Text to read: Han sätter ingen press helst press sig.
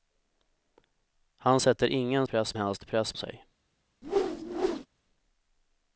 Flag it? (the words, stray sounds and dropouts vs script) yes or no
yes